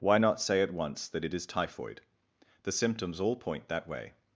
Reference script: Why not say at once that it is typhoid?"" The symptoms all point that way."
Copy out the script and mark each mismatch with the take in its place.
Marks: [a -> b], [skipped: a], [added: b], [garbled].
Why not say at once that it is typhoid?"" The symptoms all point that way."